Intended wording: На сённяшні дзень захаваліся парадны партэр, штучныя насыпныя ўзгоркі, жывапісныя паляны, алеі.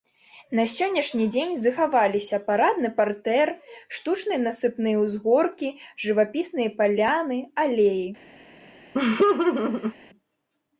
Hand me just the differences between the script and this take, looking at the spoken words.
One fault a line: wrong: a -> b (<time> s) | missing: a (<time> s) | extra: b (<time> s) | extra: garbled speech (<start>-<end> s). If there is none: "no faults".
no faults